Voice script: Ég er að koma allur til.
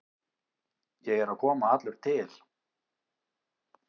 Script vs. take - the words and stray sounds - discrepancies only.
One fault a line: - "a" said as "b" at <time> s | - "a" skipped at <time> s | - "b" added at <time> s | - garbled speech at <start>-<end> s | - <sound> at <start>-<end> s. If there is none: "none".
none